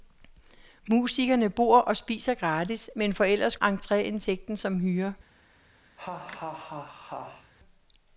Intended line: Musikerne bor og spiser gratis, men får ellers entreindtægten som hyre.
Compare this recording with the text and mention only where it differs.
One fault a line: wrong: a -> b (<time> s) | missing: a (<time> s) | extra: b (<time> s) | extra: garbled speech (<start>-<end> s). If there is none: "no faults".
no faults